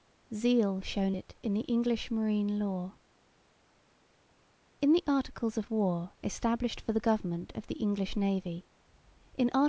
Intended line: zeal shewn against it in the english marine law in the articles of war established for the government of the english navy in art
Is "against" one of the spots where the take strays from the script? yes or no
yes